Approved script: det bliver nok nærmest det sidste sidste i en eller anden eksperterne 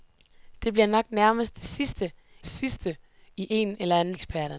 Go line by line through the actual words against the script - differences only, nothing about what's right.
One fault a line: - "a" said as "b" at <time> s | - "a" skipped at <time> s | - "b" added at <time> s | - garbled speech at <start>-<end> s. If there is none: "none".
none